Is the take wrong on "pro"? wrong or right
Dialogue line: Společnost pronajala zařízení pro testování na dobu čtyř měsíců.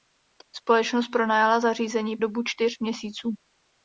wrong